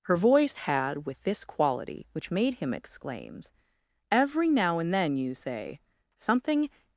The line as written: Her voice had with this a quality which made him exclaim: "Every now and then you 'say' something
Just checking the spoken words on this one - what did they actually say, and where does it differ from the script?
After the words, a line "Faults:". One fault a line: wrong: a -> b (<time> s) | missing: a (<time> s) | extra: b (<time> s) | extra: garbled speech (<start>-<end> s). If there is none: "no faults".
Her voice had with this quality which made him exclaims: "Every now and then you 'say' something
Faults:
missing: a (1.4 s)
wrong: exclaim -> exclaims (2.7 s)